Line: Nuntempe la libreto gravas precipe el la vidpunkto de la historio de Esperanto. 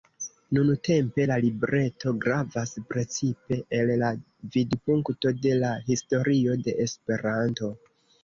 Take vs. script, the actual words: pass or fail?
pass